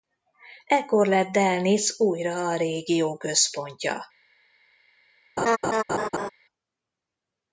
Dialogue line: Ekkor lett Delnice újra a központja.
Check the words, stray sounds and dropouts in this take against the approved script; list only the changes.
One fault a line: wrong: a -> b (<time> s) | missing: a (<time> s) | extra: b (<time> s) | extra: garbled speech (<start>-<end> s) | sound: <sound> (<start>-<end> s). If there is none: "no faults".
extra: régió (2.5 s)
sound: laugh (5.4-6.3 s)